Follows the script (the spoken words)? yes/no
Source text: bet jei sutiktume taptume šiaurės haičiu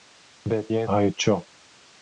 no